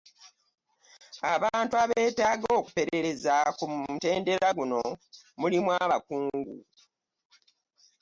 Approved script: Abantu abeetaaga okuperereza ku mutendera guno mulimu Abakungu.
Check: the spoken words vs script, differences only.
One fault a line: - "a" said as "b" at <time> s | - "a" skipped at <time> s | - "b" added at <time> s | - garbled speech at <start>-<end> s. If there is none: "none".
none